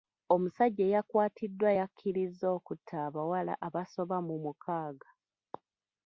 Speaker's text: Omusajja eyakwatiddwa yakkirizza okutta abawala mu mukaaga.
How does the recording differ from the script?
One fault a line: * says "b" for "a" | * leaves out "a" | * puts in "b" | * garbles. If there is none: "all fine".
* puts in "abasoba"